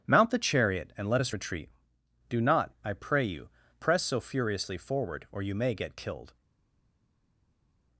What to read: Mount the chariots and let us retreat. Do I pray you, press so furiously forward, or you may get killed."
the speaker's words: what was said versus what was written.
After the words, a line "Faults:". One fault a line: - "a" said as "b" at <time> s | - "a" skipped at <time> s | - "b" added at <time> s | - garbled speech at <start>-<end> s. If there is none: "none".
Mount the chariot and let us retreat. Do not, I pray you, press so furiously forward, or you may get killed."
Faults:
- "chariots" said as "chariot" at 0.4 s
- "not" added at 2.4 s